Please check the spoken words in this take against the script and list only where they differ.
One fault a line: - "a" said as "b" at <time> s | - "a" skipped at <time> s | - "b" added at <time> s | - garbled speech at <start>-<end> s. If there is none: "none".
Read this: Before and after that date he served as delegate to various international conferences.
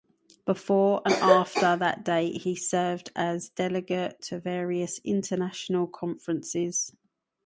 none